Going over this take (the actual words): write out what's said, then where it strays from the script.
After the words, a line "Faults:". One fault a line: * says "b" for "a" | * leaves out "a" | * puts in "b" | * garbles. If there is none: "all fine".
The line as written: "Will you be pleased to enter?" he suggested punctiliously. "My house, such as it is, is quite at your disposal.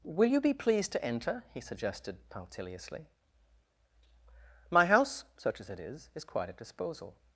"Will you be pleased to enter?" he suggested punctiliously. "My house, such as it is, is quite at disposal.
Faults:
* leaves out "your"